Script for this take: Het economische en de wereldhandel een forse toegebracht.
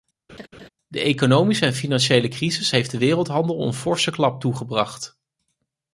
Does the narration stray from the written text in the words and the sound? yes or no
yes